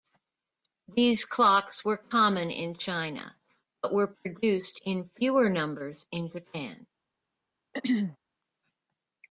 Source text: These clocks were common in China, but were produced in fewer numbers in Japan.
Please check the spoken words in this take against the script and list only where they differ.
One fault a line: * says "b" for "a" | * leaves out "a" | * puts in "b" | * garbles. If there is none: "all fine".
all fine